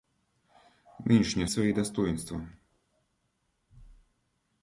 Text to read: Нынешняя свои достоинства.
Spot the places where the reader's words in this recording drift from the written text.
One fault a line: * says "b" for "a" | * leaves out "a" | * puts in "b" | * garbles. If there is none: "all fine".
all fine